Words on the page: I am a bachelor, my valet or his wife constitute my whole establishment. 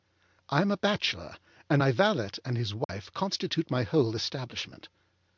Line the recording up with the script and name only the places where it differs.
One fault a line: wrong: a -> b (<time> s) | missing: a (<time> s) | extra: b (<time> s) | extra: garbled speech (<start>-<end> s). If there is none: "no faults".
extra: and (1.7 s)
wrong: or -> and (2.4 s)